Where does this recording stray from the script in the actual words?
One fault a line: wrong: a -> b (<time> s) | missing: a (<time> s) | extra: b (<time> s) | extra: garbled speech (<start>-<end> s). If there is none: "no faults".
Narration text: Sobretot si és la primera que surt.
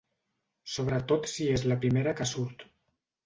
no faults